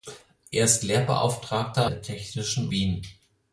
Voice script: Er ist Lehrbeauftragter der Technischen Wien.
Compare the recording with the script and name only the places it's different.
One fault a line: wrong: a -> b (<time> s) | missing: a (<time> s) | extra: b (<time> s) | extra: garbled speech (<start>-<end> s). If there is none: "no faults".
no faults